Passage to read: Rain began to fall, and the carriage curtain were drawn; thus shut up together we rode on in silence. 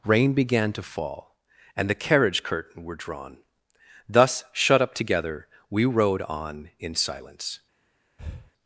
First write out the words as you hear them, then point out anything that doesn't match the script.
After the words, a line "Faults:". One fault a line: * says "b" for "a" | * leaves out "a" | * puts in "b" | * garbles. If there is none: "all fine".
Rain began to fall, and the carriage curtain were drawn; thus shut up together we rode on in silence.
Faults:
all fine